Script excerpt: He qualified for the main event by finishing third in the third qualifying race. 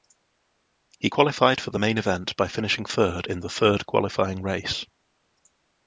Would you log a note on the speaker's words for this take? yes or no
no